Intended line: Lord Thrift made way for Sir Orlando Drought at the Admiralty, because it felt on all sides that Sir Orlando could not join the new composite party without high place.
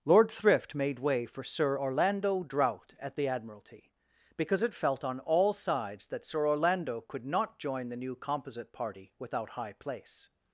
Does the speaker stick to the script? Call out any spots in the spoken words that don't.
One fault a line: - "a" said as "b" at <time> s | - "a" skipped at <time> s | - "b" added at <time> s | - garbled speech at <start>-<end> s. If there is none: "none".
none